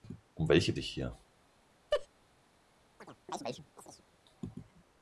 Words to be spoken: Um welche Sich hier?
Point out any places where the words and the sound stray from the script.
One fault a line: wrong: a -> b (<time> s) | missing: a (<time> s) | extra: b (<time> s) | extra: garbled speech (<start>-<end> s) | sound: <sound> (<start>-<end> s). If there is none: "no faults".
sound: laugh (1.9-2.1 s)
sound: chirp (3.0-4.1 s)